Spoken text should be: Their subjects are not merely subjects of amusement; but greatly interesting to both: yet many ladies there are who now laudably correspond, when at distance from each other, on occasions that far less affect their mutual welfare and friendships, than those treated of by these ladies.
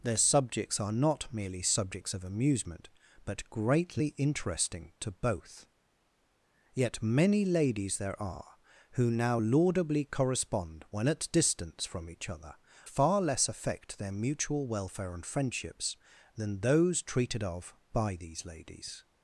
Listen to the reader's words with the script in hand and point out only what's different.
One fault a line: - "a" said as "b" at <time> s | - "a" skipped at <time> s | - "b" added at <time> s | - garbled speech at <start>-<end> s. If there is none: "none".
- "on occasions that" skipped at 12.6 s